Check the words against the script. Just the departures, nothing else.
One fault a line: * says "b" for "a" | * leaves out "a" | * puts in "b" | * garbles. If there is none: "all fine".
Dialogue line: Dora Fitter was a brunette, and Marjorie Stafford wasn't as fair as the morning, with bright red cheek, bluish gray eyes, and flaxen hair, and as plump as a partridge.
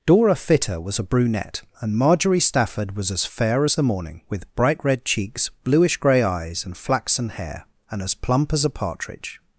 * says "was" for "wasn't"
* says "cheeks" for "cheek"